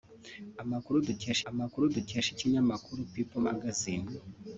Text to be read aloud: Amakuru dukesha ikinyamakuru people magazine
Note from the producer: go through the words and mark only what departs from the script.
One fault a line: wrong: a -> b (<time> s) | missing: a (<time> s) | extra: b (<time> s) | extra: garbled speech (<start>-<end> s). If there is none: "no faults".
extra: amakuru dukesha (1.5 s)